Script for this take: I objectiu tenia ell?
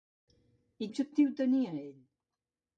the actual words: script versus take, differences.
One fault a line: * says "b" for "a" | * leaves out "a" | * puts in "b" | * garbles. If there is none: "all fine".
all fine